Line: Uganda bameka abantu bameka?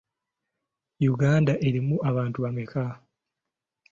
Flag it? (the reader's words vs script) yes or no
yes